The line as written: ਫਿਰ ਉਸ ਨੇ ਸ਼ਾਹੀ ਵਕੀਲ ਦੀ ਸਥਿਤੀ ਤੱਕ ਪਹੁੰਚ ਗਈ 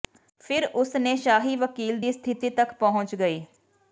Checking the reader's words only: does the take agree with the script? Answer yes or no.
yes